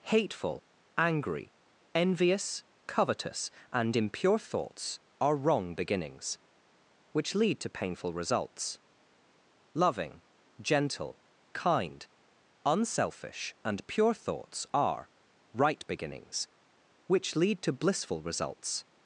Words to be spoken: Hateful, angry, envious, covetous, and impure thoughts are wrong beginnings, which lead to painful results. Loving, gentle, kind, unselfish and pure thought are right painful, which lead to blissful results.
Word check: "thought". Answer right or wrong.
wrong